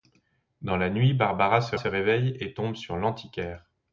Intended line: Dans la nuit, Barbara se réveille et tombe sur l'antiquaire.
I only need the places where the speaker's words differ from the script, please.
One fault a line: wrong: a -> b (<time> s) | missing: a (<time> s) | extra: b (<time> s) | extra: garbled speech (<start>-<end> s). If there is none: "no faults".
extra: se (1.7 s)